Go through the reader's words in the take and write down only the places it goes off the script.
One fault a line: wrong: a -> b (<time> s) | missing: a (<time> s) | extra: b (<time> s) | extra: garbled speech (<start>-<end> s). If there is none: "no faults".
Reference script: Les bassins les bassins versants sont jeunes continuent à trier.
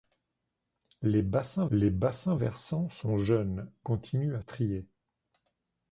no faults